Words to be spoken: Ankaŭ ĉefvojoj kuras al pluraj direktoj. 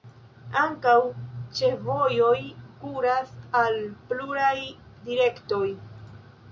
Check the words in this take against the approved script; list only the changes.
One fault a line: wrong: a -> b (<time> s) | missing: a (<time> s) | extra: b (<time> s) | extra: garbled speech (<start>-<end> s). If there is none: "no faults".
no faults